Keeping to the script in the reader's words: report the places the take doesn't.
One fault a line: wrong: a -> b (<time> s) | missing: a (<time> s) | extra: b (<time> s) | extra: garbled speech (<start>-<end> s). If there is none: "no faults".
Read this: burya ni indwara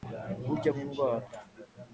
no faults